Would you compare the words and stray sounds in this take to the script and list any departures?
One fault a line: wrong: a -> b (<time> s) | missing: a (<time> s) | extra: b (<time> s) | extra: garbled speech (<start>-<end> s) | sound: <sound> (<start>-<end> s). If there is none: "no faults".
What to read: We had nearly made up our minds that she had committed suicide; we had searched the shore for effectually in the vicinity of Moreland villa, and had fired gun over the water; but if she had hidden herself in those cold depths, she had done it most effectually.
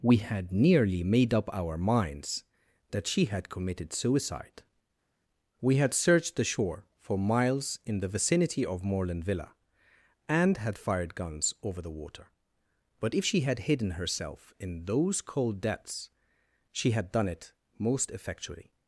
wrong: effectually -> miles (7.2 s)
wrong: gun -> guns (11.1 s)